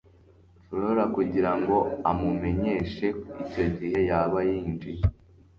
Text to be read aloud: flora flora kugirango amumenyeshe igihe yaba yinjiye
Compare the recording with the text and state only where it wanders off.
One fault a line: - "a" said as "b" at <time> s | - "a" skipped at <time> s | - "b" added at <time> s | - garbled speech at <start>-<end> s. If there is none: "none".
- "flora" skipped at 1.0 s
- "icyo" added at 3.4 s